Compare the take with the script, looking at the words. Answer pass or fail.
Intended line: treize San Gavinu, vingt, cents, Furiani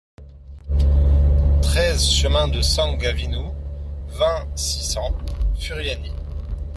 fail